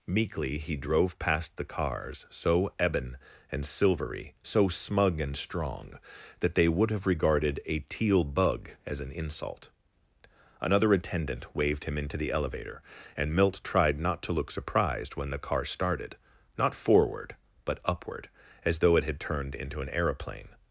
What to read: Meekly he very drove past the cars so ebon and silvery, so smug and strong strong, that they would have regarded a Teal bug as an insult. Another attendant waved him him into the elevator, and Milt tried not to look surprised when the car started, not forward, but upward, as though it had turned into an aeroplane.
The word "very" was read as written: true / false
false